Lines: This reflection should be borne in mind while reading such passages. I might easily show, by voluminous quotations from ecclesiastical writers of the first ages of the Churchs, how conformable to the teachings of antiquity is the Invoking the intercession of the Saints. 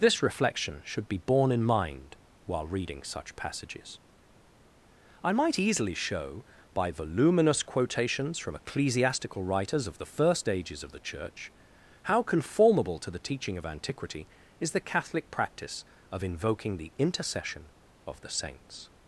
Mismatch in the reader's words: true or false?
true